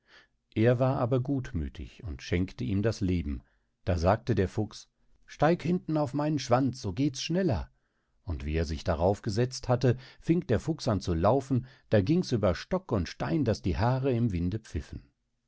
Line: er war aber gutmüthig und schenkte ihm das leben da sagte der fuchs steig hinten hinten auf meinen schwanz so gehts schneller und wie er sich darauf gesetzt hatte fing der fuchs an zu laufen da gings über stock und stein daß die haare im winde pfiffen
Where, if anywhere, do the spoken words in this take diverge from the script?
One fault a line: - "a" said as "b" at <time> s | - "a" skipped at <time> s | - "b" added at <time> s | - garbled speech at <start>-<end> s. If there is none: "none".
- "hinten" skipped at 6.0 s